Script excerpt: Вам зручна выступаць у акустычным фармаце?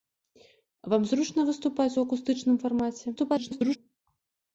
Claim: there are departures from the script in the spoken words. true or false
true